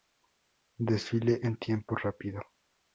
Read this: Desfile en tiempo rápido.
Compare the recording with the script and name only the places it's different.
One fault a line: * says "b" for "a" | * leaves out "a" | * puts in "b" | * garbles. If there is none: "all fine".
all fine